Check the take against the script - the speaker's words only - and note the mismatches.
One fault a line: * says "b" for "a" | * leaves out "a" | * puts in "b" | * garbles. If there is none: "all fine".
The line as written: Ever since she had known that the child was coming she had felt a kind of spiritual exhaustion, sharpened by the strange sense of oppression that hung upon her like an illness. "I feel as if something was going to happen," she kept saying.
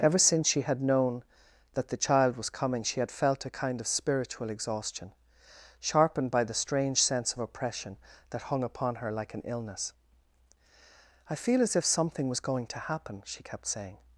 all fine